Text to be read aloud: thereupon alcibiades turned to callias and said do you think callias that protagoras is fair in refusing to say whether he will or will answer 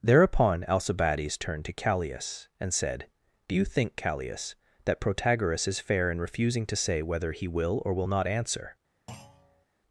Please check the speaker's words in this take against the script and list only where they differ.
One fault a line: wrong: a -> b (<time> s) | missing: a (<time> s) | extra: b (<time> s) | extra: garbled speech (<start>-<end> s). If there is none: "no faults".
extra: not (8.0 s)